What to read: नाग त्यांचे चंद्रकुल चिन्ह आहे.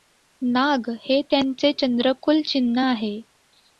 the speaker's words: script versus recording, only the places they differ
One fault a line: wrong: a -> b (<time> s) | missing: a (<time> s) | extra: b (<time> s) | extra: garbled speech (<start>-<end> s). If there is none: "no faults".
extra: हे (1.0 s)